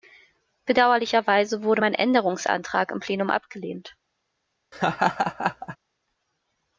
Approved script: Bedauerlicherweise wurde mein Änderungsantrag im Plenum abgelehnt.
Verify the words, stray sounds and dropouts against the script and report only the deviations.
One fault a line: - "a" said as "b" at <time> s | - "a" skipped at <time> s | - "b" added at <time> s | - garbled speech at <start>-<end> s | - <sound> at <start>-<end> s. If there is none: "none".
- laugh at 4.7-5.8 s